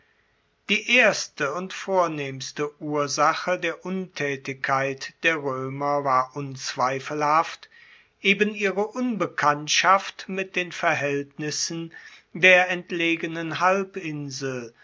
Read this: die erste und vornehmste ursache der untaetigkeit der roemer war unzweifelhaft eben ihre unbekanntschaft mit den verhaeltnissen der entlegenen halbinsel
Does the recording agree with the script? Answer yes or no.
yes